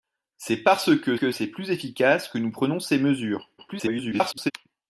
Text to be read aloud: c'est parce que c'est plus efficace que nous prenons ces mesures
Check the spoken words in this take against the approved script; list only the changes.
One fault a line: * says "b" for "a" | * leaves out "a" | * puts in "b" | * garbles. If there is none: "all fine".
* puts in "que"
* garbles